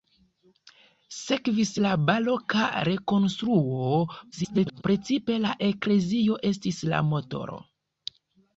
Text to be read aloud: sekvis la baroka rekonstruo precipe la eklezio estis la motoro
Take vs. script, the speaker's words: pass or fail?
fail